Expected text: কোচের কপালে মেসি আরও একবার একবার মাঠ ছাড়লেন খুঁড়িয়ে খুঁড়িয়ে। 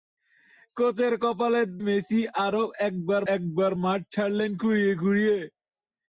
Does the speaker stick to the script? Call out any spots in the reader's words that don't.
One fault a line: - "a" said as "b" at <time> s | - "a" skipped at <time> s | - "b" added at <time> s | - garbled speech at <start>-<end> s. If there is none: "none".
none